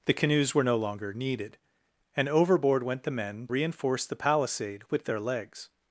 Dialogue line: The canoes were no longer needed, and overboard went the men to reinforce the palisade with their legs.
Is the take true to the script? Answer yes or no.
no